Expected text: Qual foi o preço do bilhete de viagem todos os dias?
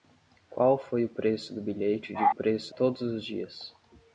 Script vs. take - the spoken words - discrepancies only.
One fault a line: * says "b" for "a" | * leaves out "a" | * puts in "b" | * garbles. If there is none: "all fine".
* says "preço" for "viagem"